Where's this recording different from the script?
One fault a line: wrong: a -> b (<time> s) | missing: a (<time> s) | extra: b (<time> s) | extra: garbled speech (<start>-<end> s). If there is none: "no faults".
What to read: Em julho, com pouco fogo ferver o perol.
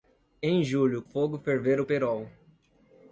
missing: com pouco (1.0 s)